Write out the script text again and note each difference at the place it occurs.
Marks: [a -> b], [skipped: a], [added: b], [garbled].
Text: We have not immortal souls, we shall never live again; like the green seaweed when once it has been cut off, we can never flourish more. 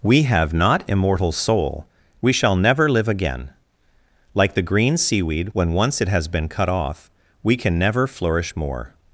We have not immortal [souls, -> soul] we shall never live again; like the green seaweed when once it has been cut off, we can never flourish more.